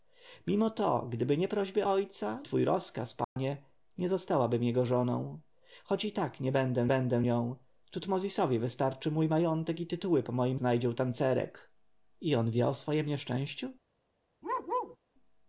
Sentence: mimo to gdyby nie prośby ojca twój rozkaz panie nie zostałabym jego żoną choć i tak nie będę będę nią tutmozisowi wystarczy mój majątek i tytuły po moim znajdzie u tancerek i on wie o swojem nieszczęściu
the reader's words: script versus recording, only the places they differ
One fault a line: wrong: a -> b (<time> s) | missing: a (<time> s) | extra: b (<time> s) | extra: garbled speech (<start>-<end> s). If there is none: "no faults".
no faults